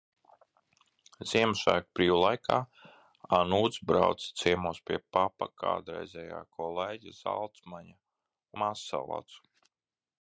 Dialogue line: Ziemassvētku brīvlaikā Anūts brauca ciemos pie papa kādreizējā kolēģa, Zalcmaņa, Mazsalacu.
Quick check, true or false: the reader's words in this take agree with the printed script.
true